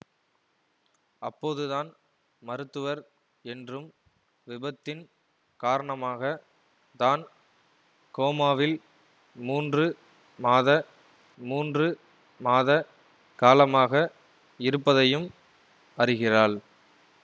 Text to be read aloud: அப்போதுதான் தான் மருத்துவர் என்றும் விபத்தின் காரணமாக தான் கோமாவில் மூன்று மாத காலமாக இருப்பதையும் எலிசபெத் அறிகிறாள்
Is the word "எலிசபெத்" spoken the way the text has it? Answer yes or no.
no